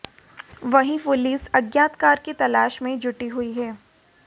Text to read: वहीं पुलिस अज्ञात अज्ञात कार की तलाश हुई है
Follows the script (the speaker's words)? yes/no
no